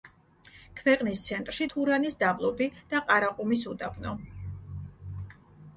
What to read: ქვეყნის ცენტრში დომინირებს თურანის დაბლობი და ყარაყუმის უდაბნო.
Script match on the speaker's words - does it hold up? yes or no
no